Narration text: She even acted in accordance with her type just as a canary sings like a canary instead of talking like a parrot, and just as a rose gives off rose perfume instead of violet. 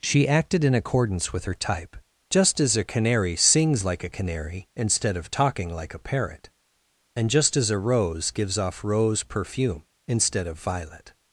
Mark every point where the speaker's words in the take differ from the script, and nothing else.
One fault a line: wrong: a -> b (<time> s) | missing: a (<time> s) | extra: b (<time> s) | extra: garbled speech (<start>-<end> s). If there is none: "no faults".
missing: even (0.3 s)